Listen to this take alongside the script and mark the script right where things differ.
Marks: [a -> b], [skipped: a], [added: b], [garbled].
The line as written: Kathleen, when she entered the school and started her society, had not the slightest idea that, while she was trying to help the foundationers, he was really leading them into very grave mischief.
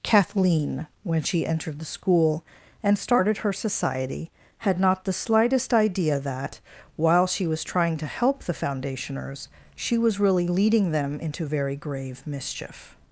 Kathleen, when she entered the school and started her society, had not the slightest idea that, while she was trying to help the foundationers, [he -> she] was really leading them into very grave mischief.